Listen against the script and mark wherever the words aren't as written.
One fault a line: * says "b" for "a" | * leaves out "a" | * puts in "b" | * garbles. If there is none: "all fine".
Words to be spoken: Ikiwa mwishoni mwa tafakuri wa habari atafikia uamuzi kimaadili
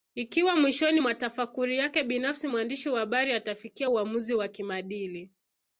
* puts in "yake binafsi mwandishi"
* puts in "wa"